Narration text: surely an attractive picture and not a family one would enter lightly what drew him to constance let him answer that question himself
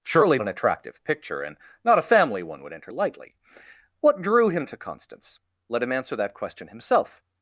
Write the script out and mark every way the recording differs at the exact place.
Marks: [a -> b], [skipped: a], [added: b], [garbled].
surely an attractive picture and not a family one would enter lightly what drew him to constance let him answer that question himself